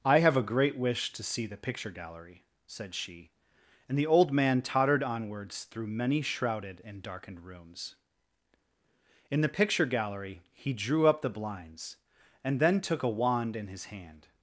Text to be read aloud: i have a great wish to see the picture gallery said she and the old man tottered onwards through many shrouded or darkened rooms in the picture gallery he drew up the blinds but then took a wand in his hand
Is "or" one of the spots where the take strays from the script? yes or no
yes